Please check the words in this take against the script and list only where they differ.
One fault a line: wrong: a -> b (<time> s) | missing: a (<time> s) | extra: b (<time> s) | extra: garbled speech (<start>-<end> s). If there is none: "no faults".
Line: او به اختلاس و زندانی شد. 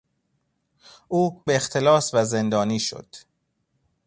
no faults